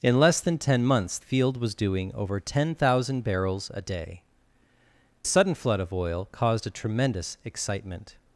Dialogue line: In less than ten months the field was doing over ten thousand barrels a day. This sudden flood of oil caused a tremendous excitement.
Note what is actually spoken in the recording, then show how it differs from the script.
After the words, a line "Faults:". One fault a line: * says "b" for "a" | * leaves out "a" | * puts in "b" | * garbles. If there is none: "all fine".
In less than ten months field was doing over ten thousand barrels a day. Sudden flood of oil caused a tremendous excitement.
Faults:
* leaves out "the"
* leaves out "This"